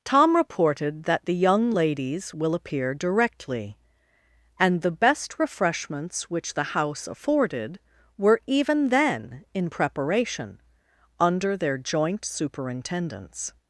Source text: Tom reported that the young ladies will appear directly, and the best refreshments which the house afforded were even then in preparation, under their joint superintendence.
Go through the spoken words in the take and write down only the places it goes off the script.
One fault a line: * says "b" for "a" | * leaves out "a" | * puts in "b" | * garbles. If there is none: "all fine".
all fine